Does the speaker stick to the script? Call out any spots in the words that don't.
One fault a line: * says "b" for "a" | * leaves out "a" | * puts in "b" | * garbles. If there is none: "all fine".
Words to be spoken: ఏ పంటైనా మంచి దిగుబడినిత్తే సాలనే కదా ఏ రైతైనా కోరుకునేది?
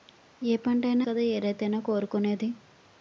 * leaves out "మంచి దిగుబడినిత్తే సాలనే"